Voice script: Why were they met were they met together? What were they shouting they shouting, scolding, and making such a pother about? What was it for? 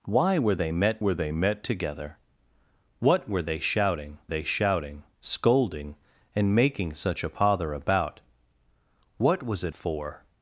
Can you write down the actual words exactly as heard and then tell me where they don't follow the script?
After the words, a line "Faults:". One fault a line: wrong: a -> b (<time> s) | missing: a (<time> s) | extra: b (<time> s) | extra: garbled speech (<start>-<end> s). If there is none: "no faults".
Why were they met were they met together? What were they shouting they shouting, scolding, and making such a pother about? What was it for?
Faults:
no faults